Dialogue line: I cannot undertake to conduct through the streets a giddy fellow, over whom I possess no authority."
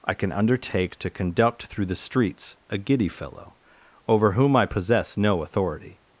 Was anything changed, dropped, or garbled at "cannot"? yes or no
yes